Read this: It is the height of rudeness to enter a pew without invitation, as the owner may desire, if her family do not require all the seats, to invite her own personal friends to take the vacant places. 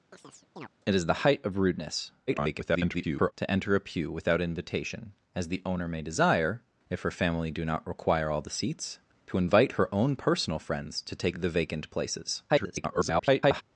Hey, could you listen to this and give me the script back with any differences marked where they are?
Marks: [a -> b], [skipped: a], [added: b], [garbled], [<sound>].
[chirp] It is the height of rudeness [garbled] to enter a pew without invitation, as the owner may desire, if her family do not require all the seats, to invite her own personal friends to take the vacant places. [garbled]